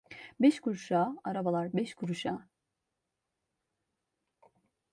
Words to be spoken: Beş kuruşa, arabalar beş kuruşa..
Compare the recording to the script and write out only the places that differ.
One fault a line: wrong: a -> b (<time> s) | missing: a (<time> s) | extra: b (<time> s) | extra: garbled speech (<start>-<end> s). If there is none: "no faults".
no faults